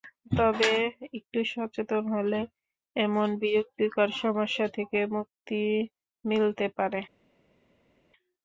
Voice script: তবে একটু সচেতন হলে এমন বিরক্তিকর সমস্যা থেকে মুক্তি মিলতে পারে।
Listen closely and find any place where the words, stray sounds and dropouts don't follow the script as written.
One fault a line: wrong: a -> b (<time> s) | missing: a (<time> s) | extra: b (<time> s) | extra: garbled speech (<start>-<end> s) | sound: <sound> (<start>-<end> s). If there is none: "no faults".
no faults